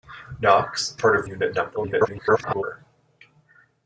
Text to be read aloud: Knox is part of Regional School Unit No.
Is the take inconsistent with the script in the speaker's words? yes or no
yes